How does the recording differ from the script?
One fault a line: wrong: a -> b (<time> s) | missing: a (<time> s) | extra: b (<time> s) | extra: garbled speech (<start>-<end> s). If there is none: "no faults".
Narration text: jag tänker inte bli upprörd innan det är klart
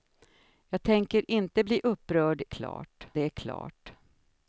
wrong: innan -> klart (2.4 s)